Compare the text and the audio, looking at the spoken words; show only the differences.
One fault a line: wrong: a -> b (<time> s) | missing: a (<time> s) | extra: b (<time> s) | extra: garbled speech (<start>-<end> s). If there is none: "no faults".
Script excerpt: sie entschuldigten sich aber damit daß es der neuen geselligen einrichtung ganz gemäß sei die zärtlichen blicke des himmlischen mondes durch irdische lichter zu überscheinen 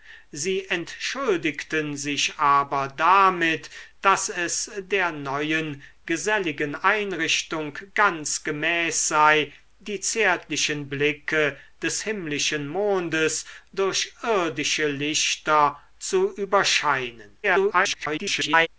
extra: garbled speech (17.4-18.7 s)